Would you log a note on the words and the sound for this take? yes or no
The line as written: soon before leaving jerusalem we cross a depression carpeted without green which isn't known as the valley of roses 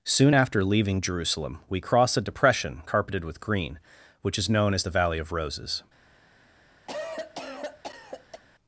yes